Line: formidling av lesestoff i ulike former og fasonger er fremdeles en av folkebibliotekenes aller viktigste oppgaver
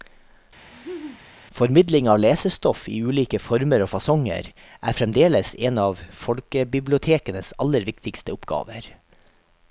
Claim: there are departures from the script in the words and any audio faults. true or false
true